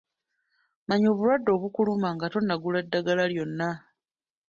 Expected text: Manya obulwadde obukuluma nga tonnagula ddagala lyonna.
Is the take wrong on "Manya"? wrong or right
right